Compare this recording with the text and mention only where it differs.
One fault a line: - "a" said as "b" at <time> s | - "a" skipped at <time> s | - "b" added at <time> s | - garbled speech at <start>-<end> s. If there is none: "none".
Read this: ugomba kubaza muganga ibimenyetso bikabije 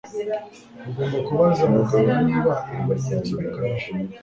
- "niba" added at 2.3 s